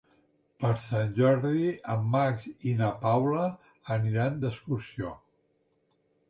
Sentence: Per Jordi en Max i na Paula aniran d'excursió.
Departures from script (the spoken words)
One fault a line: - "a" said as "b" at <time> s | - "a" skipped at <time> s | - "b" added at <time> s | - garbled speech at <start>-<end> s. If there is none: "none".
- "Sant" added at 0.8 s